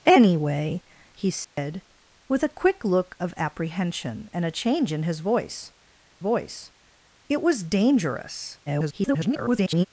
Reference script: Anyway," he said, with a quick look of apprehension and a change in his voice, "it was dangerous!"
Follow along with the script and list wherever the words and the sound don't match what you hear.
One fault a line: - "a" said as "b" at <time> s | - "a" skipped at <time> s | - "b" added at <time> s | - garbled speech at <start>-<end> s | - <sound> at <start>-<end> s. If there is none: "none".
- dropout at 1.4-1.6 s
- "voice" added at 6.2 s
- garbled speech at 8.7-9.9 s